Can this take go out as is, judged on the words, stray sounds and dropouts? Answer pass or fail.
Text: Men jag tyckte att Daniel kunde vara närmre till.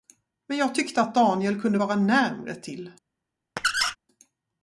fail